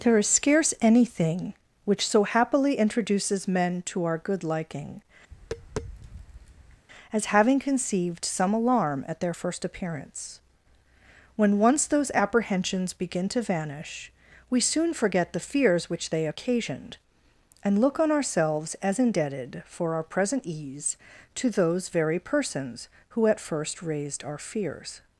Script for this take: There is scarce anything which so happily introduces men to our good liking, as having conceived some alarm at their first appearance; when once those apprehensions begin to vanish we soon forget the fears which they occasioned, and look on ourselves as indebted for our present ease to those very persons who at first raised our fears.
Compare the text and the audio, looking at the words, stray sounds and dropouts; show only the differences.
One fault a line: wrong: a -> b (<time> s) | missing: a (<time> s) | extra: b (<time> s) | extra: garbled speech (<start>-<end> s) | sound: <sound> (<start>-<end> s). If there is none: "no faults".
sound: tap (5.3-6.9 s)